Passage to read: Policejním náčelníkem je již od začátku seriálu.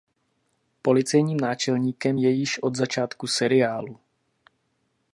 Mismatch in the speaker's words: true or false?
false